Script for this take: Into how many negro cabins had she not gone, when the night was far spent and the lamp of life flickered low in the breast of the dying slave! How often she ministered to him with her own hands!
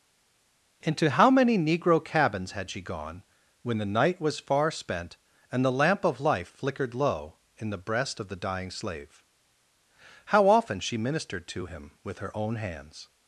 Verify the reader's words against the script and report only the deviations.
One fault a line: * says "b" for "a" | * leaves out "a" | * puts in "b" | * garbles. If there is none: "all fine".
* leaves out "not"